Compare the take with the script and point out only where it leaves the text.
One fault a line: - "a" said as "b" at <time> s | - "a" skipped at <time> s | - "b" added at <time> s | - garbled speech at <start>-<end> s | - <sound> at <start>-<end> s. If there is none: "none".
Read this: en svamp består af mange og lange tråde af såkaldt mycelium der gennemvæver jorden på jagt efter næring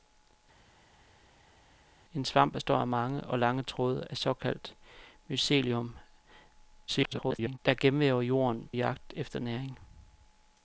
- garbled speech at 6.9-7.6 s
- "på" skipped at 8.7 s